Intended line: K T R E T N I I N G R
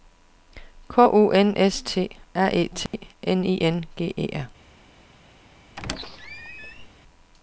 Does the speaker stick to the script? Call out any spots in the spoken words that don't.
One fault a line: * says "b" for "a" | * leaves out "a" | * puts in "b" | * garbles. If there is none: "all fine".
* puts in "U N S"
* leaves out "I"
* puts in "E"